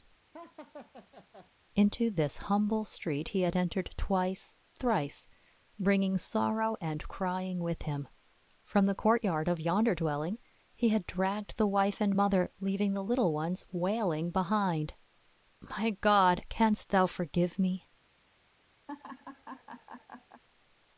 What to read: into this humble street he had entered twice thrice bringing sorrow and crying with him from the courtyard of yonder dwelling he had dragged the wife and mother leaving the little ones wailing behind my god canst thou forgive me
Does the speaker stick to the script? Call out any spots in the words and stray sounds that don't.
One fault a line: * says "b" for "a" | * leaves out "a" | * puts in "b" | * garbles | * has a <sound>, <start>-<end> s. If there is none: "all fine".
* has a laugh, 0.3-1.5 s
* has a laugh, 18.9-20.4 s